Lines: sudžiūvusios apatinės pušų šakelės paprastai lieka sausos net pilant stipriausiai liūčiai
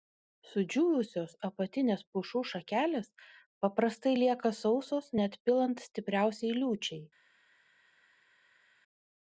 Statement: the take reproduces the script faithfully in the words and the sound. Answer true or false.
true